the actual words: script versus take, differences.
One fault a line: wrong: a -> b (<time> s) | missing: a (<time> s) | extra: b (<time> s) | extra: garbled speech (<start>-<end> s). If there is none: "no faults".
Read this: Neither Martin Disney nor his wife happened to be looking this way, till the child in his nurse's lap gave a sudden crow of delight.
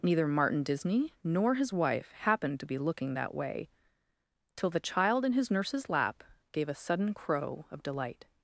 wrong: this -> that (3.1 s)